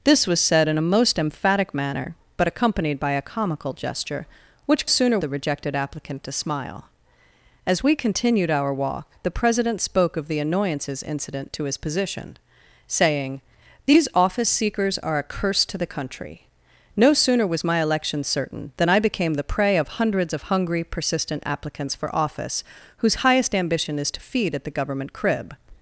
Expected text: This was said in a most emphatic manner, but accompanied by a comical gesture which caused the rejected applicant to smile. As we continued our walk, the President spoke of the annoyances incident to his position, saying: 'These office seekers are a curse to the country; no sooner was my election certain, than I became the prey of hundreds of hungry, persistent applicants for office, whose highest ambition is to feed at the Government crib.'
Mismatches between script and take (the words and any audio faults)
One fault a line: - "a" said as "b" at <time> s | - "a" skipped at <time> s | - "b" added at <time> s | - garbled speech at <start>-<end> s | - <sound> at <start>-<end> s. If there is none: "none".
- "caused" said as "sooner" at 4.8 s